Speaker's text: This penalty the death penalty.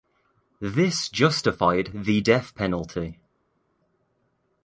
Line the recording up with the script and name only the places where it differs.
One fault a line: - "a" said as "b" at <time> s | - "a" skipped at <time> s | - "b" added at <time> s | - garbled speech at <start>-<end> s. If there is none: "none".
- "penalty" said as "justified" at 1.1 s